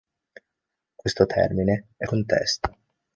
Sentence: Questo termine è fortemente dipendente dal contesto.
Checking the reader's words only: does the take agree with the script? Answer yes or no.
no